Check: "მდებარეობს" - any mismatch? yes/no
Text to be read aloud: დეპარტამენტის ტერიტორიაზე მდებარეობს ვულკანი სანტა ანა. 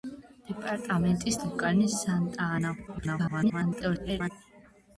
yes